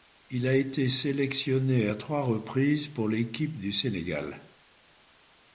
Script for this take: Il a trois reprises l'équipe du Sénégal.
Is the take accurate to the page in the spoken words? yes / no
no